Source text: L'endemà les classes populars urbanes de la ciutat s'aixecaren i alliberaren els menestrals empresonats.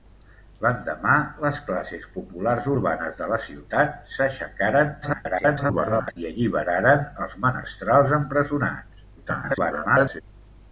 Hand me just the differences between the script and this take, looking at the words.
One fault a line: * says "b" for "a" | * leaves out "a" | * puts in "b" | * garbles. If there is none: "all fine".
* garbles
* garbles